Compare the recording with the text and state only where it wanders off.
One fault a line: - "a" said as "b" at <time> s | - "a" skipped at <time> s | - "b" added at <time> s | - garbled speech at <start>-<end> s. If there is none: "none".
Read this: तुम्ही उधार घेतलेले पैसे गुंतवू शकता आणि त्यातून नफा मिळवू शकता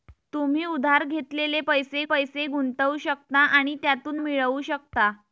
- "पैसे" added at 2.0 s
- "नफा" skipped at 4.2 s